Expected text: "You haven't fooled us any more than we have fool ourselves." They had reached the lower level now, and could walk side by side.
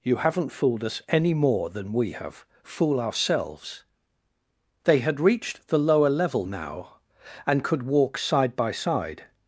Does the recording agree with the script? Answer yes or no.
yes